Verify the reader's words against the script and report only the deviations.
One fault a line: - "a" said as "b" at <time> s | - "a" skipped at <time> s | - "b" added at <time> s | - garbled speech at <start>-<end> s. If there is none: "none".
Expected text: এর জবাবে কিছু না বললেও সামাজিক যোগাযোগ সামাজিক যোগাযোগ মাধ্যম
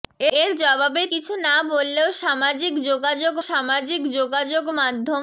none